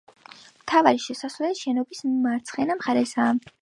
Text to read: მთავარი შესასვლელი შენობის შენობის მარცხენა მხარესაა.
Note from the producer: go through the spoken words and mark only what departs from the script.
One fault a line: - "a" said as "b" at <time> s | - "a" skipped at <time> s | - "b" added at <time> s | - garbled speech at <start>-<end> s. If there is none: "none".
- "შენობის" skipped at 2.0 s